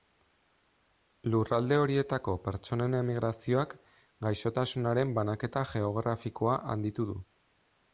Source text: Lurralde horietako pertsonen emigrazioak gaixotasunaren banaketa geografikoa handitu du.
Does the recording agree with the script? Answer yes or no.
yes